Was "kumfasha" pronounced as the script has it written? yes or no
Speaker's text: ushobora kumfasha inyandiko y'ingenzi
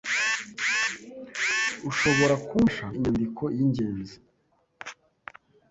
yes